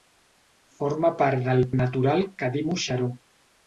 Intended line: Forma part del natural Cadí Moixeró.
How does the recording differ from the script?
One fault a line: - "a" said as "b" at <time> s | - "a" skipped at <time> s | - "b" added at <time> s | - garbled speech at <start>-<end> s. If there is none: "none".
none